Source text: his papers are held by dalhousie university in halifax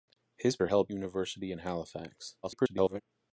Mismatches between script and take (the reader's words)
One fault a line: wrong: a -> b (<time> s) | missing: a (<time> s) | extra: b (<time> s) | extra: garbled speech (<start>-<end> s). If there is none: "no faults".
missing: papers (0.6 s)
missing: by dalhousie (0.9 s)
extra: garbled speech (2.4-3.0 s)